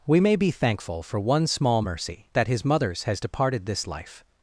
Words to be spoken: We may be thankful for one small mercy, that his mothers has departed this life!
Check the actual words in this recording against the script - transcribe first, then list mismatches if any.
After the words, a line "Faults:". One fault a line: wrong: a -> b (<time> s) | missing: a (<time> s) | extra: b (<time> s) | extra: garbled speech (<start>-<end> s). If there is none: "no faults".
We may be thankful for one small mercy, that his mothers has departed this life!
Faults:
no faults